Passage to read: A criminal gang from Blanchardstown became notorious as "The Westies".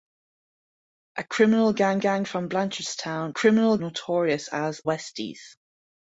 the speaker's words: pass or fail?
fail